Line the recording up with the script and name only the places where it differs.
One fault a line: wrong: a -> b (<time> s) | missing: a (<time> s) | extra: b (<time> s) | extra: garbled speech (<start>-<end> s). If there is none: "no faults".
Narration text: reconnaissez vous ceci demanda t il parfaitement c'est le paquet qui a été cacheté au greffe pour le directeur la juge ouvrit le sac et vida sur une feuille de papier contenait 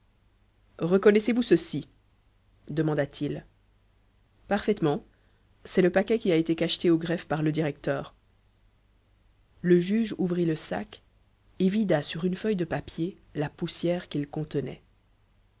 wrong: pour -> par (7.3 s)
wrong: la -> le (9.6 s)
extra: la poussière qu'il (13.3 s)